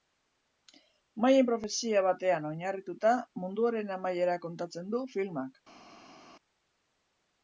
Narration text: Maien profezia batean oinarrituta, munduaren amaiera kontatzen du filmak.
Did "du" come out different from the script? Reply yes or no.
no